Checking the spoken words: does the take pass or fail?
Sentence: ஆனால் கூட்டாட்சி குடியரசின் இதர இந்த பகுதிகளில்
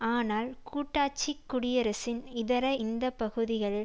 pass